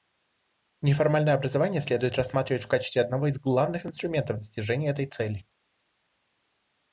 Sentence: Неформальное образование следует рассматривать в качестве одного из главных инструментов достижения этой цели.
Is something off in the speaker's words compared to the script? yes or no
no